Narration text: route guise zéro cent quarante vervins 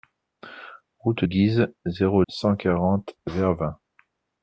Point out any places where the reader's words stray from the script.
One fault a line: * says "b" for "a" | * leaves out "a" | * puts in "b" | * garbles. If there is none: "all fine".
all fine